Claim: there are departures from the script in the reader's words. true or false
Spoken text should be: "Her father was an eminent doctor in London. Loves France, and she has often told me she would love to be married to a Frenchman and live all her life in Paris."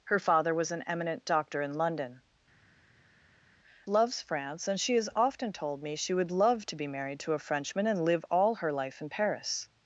false